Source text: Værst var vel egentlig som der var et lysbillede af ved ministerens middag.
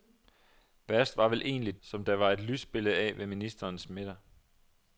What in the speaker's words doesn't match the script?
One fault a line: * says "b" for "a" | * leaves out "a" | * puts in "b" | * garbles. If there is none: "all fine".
all fine